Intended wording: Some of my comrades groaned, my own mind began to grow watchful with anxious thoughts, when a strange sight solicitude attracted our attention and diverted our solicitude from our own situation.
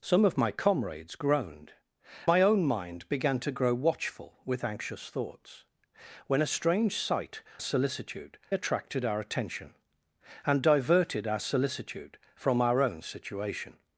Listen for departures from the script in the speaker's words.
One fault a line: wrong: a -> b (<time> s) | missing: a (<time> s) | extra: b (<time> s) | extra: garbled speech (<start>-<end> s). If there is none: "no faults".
no faults